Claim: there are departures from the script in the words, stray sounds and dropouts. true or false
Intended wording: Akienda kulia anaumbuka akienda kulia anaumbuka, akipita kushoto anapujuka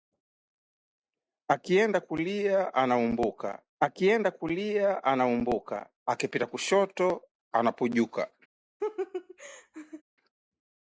true